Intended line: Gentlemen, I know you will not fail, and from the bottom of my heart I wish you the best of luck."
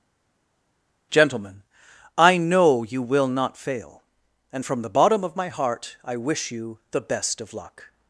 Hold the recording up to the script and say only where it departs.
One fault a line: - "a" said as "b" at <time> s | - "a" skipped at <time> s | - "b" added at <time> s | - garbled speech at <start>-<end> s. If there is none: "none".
none